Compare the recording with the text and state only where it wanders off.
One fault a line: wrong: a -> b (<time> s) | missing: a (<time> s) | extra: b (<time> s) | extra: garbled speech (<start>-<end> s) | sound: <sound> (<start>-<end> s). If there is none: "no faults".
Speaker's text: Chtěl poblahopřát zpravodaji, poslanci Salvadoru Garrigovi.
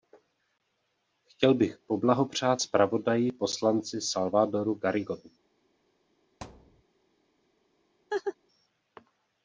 extra: bych (1.5 s)
sound: thud (6.4-6.8 s)
sound: laugh (8.1-8.4 s)